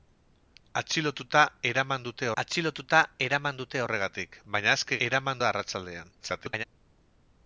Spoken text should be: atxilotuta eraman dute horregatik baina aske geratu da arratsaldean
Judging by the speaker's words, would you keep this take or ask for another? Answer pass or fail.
fail